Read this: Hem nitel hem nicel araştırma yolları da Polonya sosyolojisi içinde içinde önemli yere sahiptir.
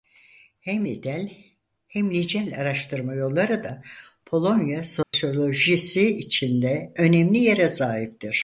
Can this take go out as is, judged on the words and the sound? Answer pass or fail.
fail